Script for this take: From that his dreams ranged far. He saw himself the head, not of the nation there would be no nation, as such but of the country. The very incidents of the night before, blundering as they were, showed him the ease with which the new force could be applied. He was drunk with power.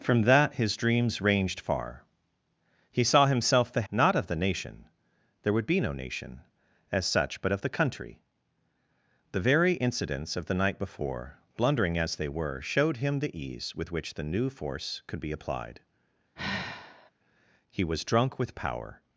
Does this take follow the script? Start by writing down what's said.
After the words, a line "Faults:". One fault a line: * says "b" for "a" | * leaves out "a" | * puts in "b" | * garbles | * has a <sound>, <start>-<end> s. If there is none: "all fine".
From that his dreams ranged far. He saw himself the not of the nation there would be no nation, as such but of the country. The very incidents of the night before, blundering as they were, showed him the ease with which the new force could be applied. He was drunk with power.
Faults:
* leaves out "head"
* has a sigh, 16.4-17.1 s